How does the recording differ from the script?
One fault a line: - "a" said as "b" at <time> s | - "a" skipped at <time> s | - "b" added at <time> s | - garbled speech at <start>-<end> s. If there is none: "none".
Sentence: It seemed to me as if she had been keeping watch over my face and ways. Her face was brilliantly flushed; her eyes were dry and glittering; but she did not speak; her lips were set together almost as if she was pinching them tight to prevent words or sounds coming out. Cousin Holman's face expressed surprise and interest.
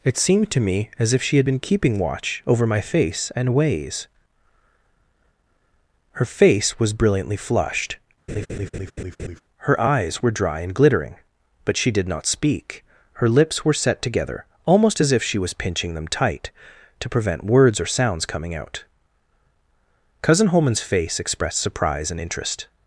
none